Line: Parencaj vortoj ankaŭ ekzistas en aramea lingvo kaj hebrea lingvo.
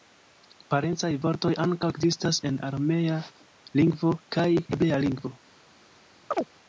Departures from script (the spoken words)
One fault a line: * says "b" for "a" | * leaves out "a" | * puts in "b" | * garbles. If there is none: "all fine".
all fine